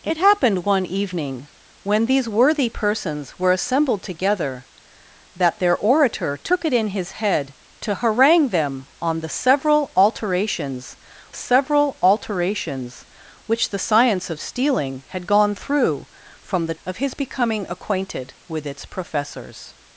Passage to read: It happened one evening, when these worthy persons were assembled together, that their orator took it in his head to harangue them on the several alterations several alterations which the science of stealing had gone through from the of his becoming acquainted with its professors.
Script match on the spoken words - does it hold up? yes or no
yes